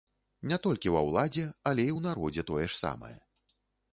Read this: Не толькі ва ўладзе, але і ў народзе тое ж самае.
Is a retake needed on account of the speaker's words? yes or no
no